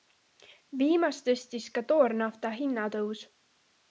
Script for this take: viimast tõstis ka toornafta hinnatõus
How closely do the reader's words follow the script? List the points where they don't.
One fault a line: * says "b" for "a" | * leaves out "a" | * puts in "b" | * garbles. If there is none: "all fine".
all fine